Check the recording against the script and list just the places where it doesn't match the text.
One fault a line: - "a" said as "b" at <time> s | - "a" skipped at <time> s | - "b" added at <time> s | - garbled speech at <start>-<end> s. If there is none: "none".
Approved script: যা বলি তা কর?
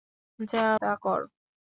- "বলি" skipped at 0.7 s